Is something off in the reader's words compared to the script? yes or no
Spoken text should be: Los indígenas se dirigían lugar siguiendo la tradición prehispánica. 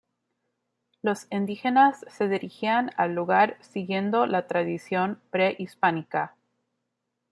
yes